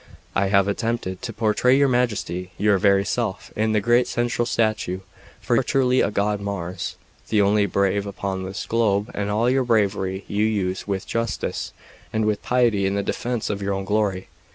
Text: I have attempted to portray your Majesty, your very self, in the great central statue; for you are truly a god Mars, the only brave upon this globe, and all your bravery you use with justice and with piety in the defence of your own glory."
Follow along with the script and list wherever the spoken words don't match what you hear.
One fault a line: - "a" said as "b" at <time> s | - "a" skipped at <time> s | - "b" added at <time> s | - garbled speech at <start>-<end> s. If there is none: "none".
- "you" skipped at 5.5 s